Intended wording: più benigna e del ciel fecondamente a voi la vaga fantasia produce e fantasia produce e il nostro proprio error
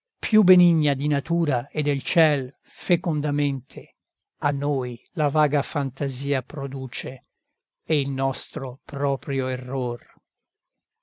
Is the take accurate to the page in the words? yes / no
no